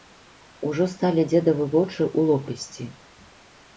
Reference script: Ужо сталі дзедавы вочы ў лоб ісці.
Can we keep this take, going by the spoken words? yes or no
yes